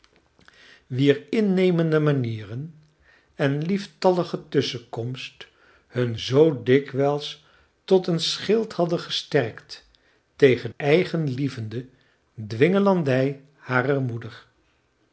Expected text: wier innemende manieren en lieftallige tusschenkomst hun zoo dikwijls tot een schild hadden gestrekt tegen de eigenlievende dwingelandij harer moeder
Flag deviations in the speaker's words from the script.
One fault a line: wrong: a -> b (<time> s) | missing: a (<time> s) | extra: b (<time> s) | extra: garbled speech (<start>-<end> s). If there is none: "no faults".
missing: de (10.7 s)